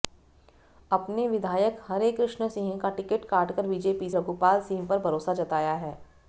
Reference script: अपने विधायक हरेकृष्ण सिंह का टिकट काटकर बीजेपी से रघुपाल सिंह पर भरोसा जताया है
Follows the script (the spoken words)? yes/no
no